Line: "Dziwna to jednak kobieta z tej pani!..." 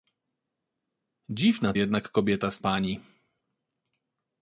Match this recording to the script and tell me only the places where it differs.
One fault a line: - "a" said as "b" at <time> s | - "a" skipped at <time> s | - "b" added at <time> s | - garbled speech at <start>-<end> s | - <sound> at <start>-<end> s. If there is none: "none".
- "to" skipped at 1.7 s
- "tej" skipped at 2.6 s